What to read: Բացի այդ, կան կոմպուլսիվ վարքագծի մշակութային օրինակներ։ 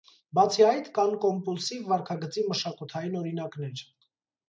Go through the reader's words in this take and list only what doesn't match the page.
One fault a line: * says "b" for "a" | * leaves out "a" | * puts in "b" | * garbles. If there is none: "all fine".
all fine